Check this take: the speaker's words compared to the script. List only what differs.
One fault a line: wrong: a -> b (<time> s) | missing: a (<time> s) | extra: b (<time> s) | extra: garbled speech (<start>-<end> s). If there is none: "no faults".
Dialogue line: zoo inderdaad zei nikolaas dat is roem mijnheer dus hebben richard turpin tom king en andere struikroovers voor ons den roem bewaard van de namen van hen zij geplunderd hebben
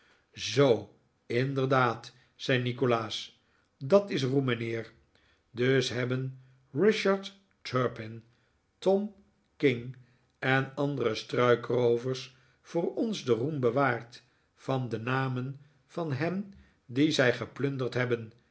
extra: die (16.9 s)